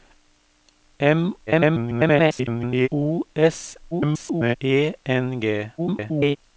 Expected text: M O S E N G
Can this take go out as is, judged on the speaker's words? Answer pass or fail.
fail